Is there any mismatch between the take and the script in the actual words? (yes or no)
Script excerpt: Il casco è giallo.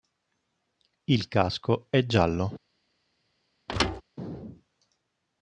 no